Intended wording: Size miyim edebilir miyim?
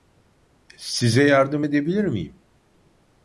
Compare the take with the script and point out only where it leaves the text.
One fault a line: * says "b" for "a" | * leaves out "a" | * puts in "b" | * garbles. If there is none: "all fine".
* says "yardım" for "miyim"